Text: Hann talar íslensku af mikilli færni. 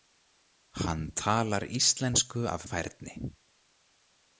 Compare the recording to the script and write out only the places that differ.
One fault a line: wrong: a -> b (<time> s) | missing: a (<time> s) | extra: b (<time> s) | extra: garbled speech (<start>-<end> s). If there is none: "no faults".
missing: mikilli (2.6 s)